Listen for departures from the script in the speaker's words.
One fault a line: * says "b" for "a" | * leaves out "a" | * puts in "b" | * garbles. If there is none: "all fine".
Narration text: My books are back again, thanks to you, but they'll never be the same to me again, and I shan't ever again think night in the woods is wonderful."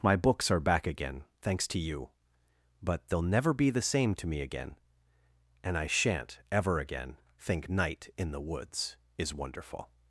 all fine